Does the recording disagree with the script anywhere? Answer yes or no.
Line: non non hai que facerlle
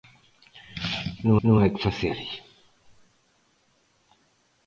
no